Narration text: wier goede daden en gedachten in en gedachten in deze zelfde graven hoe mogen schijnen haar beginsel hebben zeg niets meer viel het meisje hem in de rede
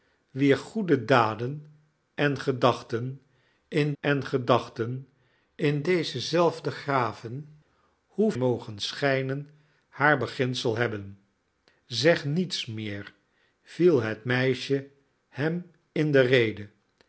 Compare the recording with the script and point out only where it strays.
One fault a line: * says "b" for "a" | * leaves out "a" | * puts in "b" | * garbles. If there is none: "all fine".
all fine